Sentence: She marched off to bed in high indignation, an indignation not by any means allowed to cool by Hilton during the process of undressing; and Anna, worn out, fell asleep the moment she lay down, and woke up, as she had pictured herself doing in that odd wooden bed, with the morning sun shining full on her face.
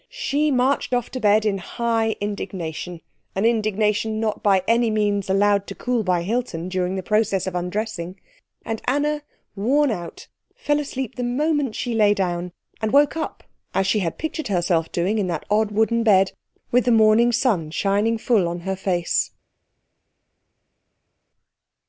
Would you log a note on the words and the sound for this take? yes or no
no